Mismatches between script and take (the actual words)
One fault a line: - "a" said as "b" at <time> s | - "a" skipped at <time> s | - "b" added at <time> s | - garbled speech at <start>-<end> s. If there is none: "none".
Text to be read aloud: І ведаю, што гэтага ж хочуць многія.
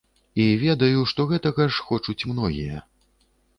none